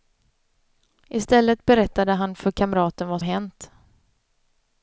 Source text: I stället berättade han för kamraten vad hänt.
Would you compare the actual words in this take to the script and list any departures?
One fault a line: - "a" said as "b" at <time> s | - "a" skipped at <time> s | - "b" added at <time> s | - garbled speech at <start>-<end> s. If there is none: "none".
none